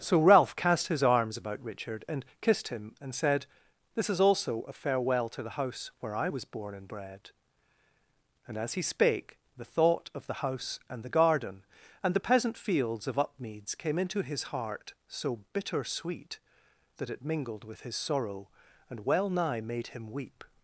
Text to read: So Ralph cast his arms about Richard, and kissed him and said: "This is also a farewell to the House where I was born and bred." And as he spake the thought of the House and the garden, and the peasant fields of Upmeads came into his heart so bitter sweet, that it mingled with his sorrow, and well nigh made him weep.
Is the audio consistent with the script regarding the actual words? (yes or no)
yes